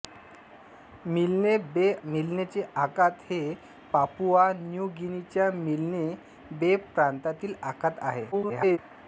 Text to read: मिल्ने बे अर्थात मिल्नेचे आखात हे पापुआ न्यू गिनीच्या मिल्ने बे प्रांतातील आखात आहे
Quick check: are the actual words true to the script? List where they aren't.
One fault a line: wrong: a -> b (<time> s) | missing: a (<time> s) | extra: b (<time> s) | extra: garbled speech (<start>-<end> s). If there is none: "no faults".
missing: अर्थात (1.9 s)
extra: garbled speech (8.3-8.8 s)